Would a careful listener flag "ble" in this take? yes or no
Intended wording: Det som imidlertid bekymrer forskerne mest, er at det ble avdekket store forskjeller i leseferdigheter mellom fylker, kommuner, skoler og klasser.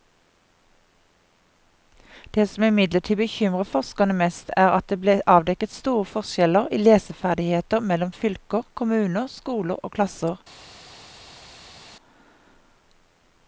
no